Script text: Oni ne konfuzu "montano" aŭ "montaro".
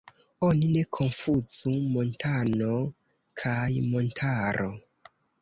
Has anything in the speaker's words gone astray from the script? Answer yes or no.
yes